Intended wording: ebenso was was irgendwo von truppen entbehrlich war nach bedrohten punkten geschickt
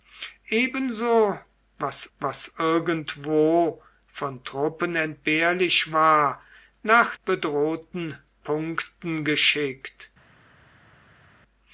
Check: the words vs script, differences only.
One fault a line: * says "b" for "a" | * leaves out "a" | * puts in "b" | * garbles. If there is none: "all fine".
all fine